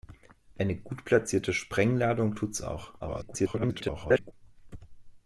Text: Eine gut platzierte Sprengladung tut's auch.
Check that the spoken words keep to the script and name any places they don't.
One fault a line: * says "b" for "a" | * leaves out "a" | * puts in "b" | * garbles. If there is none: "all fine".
* garbles